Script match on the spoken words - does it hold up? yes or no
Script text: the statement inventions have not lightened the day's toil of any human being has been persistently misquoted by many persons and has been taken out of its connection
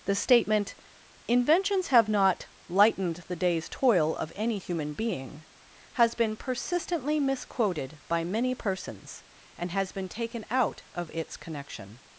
yes